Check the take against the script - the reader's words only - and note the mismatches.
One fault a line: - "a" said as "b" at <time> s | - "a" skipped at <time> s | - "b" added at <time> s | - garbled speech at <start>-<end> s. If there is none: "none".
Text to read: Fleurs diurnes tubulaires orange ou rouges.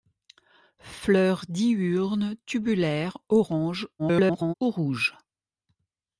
- garbled speech at 4.0-4.5 s